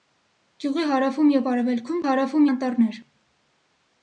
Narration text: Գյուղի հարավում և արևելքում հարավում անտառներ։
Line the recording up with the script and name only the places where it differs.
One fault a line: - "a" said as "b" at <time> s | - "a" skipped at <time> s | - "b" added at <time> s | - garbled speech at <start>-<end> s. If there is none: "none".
none